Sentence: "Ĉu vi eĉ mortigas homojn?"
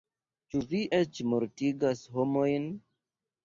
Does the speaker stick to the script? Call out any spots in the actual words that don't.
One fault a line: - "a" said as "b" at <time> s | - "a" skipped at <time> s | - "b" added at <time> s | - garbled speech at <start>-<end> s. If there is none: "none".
none